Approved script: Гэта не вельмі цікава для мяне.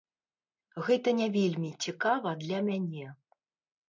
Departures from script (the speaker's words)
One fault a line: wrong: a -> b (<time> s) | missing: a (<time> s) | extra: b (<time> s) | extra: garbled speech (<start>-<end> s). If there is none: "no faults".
no faults